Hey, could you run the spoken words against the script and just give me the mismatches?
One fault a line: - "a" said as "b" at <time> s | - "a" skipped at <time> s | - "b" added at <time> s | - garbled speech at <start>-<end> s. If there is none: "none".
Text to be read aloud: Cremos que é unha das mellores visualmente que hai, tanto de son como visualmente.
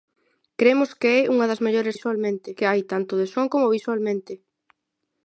none